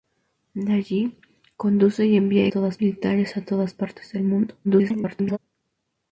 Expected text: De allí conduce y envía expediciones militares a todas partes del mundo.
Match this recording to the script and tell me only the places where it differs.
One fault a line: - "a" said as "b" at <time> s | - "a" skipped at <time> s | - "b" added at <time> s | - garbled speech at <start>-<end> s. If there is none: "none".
- "expediciones" said as "todas" at 2.5 s
- garbled speech at 4.6-5.4 s